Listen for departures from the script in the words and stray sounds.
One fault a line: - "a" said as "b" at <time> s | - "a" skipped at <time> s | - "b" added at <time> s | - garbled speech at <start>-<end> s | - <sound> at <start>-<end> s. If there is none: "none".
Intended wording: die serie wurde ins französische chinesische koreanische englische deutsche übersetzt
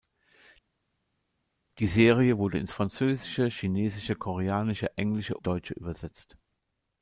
none